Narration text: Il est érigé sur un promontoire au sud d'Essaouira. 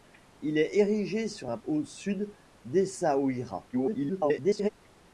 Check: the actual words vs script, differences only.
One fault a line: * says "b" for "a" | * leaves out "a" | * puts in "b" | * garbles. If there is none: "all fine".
* leaves out "promontoire"
* garbles